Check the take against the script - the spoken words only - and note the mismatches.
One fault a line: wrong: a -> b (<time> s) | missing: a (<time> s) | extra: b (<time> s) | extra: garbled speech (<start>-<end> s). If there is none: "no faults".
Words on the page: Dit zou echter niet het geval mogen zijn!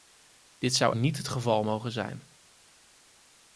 missing: echter (0.9 s)